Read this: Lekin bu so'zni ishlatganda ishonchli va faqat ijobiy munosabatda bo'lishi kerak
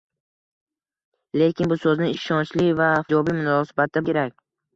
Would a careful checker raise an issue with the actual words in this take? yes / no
yes